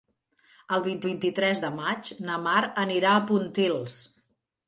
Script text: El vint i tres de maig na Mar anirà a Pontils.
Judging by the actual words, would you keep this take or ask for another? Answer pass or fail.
fail